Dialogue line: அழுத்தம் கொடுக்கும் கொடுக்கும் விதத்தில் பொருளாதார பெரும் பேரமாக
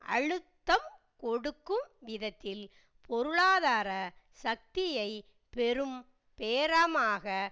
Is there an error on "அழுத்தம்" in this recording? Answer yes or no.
no